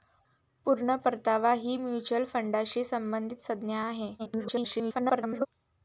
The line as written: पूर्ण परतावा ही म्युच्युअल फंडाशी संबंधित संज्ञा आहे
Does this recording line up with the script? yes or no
no